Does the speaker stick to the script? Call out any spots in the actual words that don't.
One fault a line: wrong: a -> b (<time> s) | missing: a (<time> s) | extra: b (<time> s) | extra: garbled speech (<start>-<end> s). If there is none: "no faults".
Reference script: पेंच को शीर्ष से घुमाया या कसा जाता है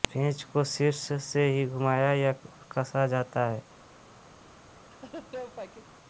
extra: ही (1.5 s)